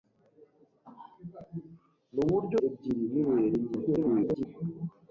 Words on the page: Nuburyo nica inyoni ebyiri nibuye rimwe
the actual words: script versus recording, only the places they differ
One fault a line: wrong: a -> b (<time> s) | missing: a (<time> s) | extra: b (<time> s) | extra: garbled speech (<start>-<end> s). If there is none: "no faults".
missing: nica inyoni (2.6 s)
extra: garbled speech (3.9-4.5 s)